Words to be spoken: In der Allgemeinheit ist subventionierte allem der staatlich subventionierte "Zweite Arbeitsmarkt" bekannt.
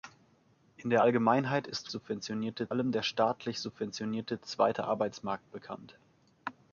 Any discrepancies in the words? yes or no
no